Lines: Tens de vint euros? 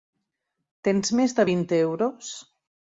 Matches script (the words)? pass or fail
fail